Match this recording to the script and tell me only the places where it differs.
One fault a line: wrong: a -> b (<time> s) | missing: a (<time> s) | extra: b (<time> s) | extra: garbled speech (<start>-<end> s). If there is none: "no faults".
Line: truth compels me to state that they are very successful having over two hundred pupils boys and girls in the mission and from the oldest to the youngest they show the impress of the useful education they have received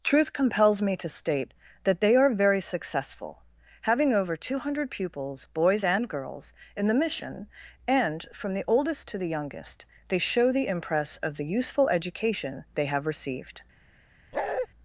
no faults